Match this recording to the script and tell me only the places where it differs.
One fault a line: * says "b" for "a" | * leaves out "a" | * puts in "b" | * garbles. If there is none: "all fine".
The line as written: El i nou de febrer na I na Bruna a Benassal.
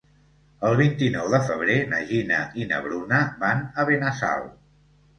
* puts in "vint"
* puts in "Gina"
* puts in "van"